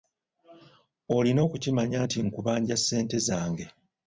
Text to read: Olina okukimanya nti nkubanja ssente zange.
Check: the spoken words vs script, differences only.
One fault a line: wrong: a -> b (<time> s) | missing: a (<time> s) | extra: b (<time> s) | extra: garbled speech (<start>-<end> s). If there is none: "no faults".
no faults